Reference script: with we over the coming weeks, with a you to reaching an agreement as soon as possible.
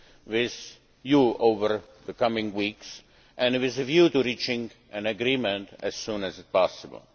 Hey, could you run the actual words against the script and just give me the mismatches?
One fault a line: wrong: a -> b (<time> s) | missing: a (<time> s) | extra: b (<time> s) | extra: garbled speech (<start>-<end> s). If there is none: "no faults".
wrong: we -> you (1.0 s)
wrong: you -> view (3.8 s)